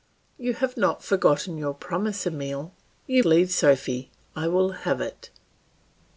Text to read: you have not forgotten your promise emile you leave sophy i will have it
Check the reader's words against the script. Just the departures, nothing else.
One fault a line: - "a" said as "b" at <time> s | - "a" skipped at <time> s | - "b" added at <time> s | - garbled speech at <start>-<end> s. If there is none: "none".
none